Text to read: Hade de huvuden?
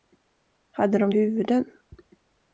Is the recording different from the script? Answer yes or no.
no